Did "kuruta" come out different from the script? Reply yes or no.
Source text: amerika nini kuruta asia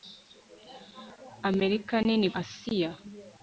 yes